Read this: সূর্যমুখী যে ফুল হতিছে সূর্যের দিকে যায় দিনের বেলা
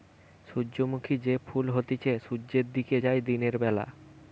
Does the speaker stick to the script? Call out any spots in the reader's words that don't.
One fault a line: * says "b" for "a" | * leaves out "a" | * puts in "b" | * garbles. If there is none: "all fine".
all fine